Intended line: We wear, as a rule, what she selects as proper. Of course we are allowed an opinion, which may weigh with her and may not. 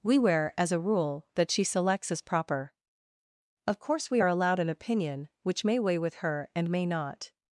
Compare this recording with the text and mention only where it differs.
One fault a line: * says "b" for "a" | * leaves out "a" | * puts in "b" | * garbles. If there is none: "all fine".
* says "that" for "what"